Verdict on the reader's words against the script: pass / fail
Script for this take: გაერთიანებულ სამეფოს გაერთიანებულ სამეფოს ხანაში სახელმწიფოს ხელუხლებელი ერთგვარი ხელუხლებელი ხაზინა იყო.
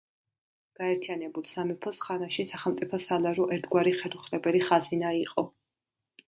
fail